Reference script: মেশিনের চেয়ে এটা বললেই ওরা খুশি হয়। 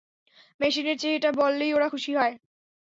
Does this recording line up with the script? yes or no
yes